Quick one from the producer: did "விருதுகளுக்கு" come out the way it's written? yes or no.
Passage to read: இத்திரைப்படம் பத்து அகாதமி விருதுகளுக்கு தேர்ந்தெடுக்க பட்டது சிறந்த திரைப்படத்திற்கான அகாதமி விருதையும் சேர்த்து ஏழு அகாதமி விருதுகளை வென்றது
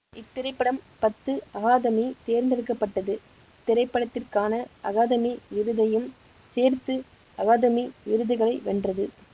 no